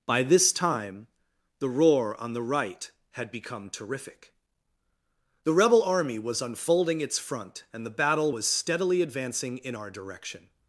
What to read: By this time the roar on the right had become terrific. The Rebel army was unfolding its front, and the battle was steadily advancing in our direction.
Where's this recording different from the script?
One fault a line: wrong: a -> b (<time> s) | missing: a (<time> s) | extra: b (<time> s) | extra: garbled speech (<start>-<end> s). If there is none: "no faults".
no faults